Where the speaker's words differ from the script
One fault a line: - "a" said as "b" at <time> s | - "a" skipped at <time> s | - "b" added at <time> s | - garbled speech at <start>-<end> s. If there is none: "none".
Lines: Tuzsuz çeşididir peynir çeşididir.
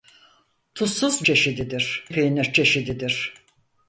none